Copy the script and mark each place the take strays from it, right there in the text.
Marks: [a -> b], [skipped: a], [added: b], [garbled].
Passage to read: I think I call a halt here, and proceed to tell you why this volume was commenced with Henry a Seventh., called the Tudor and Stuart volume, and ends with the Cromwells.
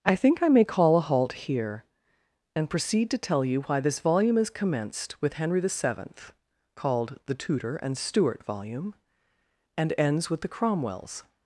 I think I [added: may] call a halt here, and proceed to tell you why this volume [was -> is] commenced with Henry [a -> the] Seventh., called the Tudor and Stuart volume, and ends with the Cromwells.